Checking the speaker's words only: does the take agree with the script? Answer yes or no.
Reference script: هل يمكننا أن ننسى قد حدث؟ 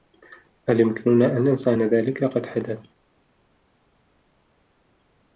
no